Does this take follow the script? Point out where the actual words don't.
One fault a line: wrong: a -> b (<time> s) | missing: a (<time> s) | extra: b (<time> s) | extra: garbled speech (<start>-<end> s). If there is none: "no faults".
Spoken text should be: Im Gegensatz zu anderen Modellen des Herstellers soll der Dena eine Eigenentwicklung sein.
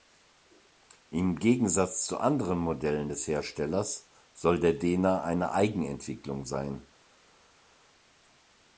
no faults